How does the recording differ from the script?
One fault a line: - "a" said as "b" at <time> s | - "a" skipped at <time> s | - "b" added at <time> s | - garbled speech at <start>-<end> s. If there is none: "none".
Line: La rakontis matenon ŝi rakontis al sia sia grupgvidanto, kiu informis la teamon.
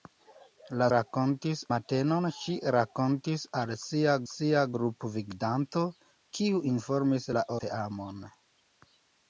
none